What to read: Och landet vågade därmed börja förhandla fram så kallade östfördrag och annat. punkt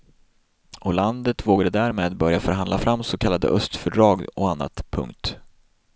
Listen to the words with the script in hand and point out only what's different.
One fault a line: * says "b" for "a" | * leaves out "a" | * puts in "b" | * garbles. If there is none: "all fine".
all fine